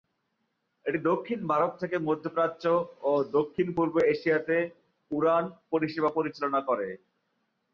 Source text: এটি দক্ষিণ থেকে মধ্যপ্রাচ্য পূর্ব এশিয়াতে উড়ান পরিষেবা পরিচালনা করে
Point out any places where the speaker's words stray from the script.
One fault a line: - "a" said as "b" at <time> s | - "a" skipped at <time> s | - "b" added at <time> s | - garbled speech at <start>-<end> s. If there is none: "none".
- "ভারত" added at 1.5 s
- "ও দক্ষিণ" added at 3.0 s